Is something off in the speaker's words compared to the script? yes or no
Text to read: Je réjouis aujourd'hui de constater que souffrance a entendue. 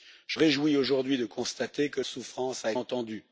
no